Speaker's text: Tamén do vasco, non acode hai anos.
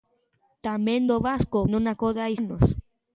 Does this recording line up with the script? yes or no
yes